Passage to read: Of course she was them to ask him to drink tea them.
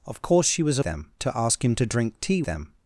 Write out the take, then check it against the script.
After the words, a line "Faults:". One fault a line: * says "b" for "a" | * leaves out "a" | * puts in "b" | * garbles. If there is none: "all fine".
Of course she was them to ask him to drink tea them.
Faults:
all fine